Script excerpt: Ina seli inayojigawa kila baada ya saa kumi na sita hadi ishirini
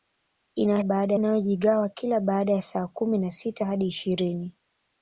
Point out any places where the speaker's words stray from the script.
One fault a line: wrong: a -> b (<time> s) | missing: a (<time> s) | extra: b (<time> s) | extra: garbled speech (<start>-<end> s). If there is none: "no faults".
wrong: seli -> baada (0.8 s)